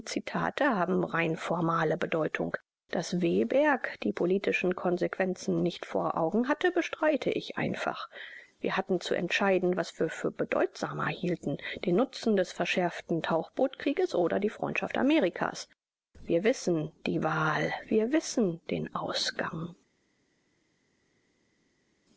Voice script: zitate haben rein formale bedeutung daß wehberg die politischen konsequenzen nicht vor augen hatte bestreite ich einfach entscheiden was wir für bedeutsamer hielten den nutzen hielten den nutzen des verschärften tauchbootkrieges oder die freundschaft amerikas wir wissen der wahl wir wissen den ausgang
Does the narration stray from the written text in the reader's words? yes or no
yes